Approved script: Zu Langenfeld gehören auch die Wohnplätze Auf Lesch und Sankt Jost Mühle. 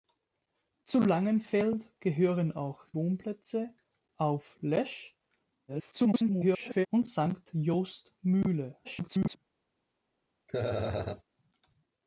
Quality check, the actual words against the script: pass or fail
fail